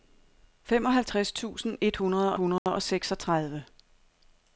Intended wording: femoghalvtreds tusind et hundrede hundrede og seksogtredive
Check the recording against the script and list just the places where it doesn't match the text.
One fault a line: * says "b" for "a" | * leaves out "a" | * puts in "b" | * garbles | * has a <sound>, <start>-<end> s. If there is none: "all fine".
* has a dropout, 2.6-2.7 s